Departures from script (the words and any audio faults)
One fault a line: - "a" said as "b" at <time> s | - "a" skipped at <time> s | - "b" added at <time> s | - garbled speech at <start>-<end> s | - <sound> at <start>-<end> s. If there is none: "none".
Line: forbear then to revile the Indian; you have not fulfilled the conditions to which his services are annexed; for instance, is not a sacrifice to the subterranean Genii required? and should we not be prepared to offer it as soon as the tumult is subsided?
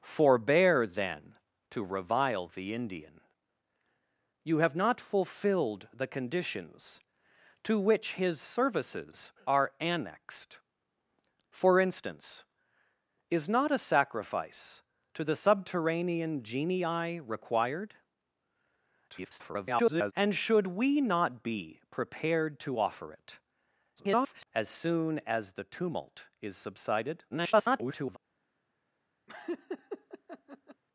- garbled speech at 19.1-20.1 s
- garbled speech at 24.0-24.5 s
- garbled speech at 27.3-28.2 s
- laugh at 29.3-30.8 s